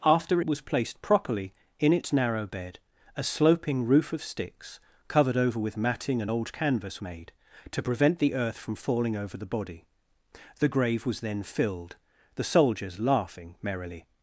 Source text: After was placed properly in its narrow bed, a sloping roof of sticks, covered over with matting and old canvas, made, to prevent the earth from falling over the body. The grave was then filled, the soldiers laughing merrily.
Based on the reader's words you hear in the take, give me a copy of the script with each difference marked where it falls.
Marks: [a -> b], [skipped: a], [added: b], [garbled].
After was placed properly in its narrow bed, a sloping roof of sticks, covered over with matting and old canvas, made, to prevent the earth from falling over the body. The grave was then filled, the soldiers laughing merrily.